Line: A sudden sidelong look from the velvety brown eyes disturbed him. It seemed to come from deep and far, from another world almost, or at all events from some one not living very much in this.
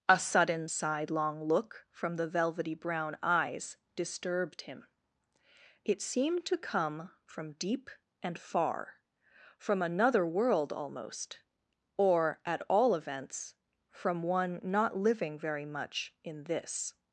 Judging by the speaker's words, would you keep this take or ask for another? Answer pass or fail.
fail